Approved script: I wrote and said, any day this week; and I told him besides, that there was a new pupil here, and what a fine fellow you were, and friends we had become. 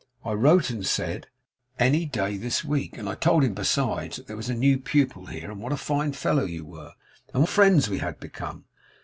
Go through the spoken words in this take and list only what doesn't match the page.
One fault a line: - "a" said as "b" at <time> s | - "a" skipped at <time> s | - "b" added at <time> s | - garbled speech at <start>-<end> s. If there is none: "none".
none